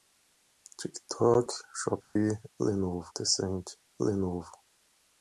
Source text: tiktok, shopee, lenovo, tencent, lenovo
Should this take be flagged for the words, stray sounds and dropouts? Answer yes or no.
yes